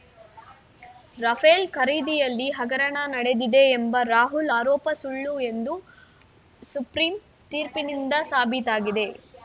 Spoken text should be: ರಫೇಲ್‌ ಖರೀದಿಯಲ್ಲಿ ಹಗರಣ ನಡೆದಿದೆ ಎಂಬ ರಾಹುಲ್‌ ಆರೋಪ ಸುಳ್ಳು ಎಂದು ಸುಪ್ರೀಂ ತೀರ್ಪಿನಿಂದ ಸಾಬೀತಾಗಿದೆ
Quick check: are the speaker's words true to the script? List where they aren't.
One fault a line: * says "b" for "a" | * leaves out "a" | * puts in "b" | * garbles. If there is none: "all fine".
all fine